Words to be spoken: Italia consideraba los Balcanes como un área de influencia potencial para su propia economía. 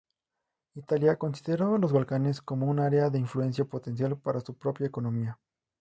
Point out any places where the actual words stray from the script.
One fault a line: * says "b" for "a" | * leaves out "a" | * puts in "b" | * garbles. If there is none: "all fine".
all fine